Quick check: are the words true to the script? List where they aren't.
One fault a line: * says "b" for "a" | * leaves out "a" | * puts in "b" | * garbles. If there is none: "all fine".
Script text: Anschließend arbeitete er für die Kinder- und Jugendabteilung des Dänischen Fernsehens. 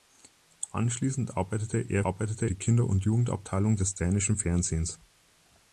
* says "arbeitete" for "für"